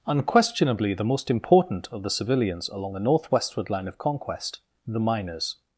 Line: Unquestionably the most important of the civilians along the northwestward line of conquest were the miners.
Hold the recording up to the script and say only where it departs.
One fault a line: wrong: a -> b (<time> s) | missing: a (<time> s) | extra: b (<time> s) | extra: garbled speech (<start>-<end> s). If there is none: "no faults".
missing: were (4.6 s)